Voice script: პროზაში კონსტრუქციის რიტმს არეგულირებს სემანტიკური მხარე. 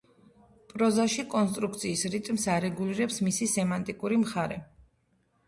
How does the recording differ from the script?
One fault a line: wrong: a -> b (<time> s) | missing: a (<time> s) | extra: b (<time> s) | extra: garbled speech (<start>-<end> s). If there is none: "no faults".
extra: მისი (3.3 s)